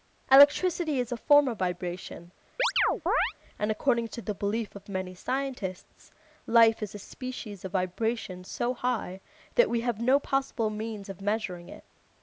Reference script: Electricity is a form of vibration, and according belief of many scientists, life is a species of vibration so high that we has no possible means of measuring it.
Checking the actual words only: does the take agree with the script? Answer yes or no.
no